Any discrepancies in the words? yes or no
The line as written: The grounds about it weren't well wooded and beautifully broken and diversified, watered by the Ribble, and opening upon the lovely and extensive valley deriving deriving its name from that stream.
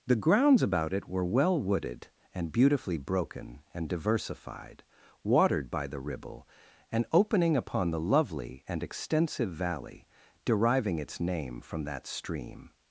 yes